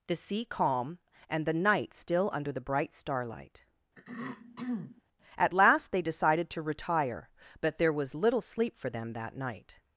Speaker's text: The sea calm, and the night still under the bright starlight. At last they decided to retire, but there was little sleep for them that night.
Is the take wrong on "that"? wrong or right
right